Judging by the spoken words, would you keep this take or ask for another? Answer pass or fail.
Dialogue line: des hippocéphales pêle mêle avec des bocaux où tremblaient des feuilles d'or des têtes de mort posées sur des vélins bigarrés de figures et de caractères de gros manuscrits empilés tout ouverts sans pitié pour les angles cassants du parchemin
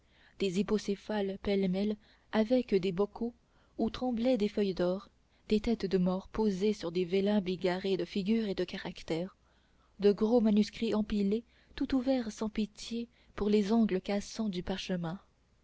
pass